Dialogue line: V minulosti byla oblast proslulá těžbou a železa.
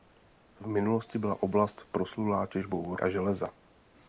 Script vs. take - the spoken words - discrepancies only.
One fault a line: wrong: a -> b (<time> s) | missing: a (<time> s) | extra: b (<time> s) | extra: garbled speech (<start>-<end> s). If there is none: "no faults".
no faults